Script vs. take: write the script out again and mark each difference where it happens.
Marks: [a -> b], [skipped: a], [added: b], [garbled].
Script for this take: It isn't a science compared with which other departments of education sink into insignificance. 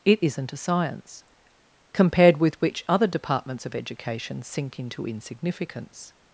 It isn't a science compared with which other departments of education sink into insignificance.